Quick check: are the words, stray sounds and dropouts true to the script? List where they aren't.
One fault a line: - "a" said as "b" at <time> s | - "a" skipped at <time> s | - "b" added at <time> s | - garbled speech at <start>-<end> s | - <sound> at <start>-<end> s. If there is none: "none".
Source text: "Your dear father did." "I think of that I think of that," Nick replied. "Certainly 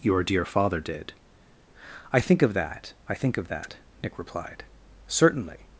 none